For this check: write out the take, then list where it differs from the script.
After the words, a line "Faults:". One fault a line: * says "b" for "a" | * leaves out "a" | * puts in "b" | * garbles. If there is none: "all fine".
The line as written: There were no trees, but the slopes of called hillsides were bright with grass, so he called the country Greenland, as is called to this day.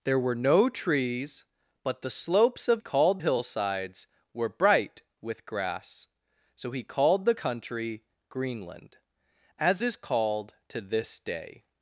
There were no trees, but the slopes of called hillsides were bright with grass, so he called the country Greenland, as is called to this day.
Faults:
all fine